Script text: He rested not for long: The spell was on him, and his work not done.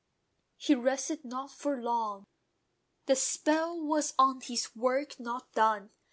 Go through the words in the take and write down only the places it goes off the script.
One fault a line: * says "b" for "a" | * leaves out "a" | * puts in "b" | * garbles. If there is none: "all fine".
* leaves out "him and"